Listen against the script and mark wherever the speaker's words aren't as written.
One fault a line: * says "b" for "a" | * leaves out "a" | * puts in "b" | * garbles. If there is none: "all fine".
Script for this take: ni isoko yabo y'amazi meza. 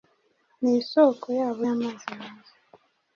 all fine